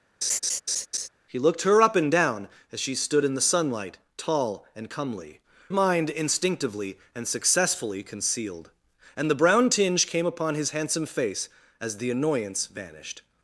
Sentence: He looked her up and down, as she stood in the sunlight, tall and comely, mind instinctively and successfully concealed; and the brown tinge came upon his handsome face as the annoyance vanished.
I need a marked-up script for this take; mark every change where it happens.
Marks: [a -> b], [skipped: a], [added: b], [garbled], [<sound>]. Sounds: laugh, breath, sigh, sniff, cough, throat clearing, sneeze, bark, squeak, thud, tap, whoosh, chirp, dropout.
[laugh] He looked her up and down, as she stood in the sunlight, tall and comely, mind instinctively and successfully concealed; and the brown tinge came upon his handsome face as the annoyance vanished.